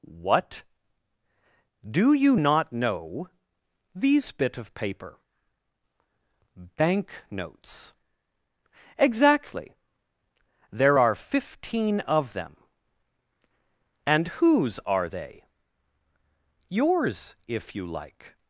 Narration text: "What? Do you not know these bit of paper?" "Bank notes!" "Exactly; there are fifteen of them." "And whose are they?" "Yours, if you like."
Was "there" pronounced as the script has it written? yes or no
yes